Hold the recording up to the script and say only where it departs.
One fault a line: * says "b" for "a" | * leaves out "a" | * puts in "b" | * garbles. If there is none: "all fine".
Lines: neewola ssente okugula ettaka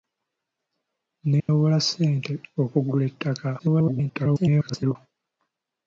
* garbles